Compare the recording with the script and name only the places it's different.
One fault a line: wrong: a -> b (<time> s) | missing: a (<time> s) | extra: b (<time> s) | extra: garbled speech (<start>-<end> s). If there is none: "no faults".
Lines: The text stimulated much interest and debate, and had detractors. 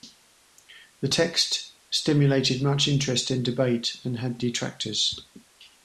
no faults